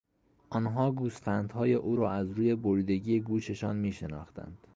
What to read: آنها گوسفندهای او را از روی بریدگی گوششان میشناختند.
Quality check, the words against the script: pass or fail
pass